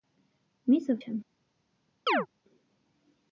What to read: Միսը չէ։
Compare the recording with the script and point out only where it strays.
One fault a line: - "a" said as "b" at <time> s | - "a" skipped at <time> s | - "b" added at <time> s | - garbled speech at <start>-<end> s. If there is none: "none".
none